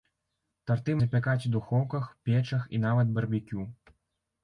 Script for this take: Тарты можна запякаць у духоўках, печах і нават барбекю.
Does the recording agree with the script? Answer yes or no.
no